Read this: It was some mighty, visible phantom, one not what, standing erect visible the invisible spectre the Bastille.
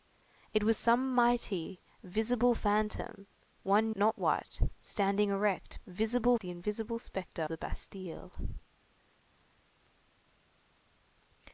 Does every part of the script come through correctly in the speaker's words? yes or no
yes